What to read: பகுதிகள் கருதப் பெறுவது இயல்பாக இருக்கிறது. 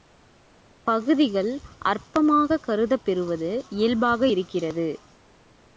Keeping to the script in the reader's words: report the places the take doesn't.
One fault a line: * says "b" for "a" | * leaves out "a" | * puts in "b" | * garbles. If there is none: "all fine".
* puts in "அற்பமாகக்"